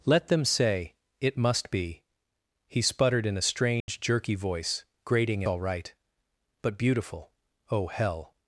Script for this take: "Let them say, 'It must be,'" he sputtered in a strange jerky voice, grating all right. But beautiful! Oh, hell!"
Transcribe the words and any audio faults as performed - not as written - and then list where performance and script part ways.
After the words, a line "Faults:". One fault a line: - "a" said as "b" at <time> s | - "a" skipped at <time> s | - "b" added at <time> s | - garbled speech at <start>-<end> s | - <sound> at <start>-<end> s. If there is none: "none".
"Let them say, 'It must be,'" he sputtered in a strange jerky voice, grating all right. But beautiful! Oh, hell!"
Faults:
- dropout at 3.8-3.9 s